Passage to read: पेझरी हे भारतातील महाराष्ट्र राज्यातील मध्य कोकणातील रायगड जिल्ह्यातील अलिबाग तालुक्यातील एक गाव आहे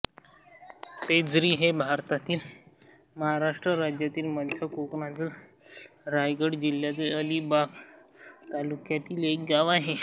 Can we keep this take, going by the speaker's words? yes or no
yes